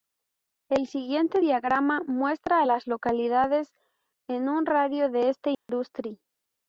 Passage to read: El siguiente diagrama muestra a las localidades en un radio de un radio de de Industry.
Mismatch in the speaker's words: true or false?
true